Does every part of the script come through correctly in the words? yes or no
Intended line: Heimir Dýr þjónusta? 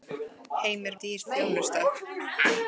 yes